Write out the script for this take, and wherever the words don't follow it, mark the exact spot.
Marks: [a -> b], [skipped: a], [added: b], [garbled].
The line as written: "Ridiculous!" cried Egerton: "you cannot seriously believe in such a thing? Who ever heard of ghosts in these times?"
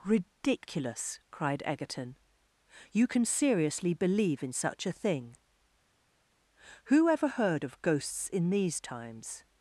"Ridiculous!" cried Egerton: "you [cannot -> can] seriously believe in such a thing? Who ever heard of ghosts in these times?"